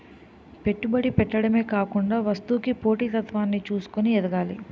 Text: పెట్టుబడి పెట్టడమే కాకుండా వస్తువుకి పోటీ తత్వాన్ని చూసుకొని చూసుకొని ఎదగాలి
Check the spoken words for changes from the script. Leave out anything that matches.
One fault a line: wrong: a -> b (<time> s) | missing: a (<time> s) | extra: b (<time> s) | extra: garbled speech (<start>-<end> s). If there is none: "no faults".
missing: చూసుకొని (4.1 s)